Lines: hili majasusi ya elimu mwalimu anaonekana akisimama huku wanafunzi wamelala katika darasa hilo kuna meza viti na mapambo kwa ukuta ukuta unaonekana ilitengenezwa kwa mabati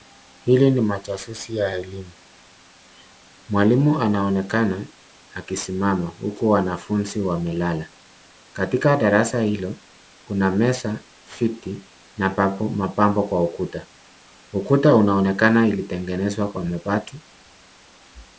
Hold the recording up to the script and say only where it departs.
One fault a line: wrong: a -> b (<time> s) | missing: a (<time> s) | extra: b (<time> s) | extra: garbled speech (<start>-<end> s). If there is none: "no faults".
extra: ni (0.7 s)